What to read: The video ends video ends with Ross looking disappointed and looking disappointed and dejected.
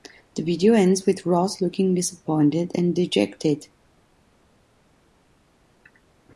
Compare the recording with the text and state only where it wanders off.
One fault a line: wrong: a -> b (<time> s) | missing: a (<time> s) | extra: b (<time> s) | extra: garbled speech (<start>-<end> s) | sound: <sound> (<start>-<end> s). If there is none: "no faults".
missing: video ends (1.1 s)
missing: looking disappointed and (2.9 s)